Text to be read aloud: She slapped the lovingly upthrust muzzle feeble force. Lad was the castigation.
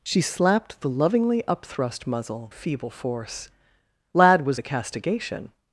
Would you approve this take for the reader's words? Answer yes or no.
yes